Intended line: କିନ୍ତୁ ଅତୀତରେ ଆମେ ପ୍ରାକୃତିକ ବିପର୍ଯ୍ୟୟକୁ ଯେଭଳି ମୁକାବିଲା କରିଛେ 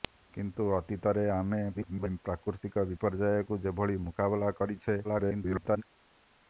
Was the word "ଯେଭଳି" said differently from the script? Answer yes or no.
no